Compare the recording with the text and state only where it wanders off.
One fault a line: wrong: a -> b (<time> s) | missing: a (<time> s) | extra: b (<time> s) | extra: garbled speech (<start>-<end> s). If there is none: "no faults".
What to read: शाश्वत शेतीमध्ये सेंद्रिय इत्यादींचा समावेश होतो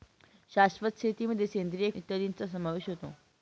no faults